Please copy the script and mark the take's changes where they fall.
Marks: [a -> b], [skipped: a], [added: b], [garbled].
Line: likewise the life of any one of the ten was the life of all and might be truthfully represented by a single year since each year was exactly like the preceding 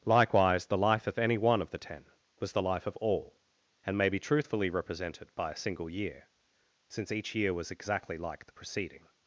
likewise the life of any one of the ten was the life of all and [might -> may] be truthfully represented by a single year since each year was exactly like the preceding